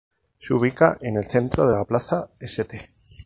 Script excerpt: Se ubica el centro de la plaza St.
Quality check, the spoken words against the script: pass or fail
fail